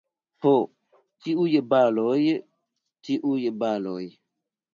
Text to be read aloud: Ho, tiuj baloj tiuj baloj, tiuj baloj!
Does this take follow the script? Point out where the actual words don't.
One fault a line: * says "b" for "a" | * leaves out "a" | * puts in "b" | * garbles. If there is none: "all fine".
* leaves out "tiuj baloj"